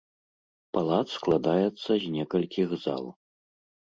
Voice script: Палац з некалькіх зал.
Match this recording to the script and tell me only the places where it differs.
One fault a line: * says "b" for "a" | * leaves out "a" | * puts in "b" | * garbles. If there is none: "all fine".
* puts in "складаецца"